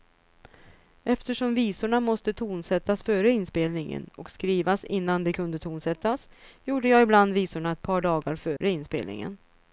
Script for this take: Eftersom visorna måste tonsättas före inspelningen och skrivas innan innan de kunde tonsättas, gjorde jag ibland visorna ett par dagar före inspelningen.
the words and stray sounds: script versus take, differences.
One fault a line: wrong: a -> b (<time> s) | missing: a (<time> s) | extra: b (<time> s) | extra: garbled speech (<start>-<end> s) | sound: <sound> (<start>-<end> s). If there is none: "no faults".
missing: innan (5.2 s)
sound: dropout (8.6-8.6 s)